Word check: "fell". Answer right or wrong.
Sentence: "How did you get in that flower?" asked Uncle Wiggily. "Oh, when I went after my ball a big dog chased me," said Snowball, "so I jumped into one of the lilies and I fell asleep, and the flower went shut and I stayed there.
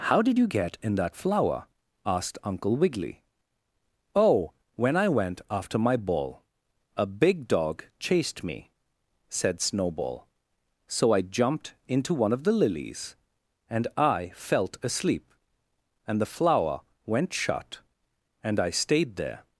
wrong